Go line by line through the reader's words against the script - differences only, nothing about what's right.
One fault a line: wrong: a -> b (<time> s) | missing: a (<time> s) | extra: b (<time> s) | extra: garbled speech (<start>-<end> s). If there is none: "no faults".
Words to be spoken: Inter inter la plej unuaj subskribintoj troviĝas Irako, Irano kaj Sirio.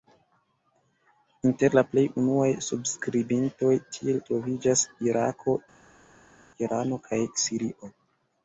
missing: inter (1.8 s)
extra: tiel (4.0 s)